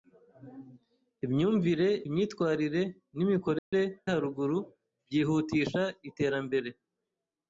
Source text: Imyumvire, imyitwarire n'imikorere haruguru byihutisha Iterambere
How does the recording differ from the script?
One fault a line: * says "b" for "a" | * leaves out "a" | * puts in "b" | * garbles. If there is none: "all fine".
all fine